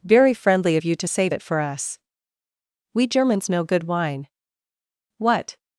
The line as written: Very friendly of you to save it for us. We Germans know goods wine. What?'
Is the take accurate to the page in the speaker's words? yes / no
no